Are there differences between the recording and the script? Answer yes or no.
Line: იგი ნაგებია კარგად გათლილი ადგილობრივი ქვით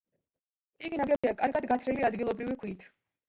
no